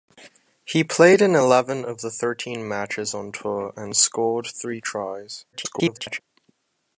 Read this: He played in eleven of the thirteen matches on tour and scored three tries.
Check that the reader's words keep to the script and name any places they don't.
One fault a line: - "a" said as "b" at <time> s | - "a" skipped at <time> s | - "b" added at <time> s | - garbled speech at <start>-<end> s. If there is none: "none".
- garbled speech at 5.5-6.2 s